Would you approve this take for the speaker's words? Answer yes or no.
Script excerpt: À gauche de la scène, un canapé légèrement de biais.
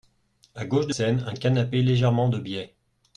no